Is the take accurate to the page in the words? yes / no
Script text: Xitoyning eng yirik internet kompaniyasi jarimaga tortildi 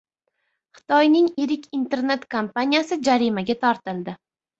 no